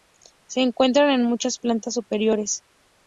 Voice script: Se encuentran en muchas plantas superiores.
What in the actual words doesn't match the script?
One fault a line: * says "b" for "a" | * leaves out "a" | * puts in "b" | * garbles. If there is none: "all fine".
all fine